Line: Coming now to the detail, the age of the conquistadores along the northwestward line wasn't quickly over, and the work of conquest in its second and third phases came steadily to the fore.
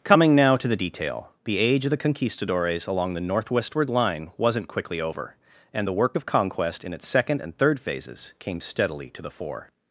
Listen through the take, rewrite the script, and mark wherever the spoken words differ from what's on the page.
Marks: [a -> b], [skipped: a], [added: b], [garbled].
Coming now to the detail, the age of the conquistadores along the northwestward line wasn't quickly over, and the work of conquest in its second and third phases came steadily to the fore.